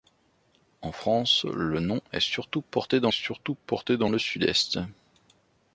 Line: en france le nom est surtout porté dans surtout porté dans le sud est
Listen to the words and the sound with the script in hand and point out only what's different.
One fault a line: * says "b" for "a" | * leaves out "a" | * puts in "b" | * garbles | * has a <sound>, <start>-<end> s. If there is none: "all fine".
all fine